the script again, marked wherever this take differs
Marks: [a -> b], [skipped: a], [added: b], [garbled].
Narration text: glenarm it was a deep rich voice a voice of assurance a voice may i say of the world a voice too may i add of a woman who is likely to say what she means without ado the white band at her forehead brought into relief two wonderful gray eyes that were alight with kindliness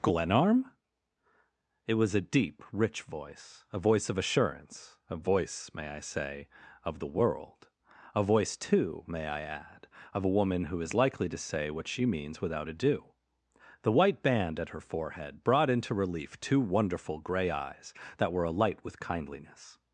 glenarm it was a deep rich voice a voice of assurance a voice may i say of the world a voice too may i add of a woman who is likely to say what she means without ado the white band at her forehead brought into relief two wonderful gray eyes that were alight with kindliness